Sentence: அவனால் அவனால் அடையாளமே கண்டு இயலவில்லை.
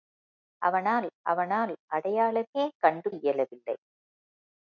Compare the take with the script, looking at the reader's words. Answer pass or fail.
pass